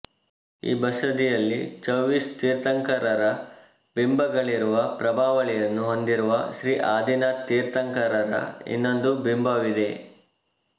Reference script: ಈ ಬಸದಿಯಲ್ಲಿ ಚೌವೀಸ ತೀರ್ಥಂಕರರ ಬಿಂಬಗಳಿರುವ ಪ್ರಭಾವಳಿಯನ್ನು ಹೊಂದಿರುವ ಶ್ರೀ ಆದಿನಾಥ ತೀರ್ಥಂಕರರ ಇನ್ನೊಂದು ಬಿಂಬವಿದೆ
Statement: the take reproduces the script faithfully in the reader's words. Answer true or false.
true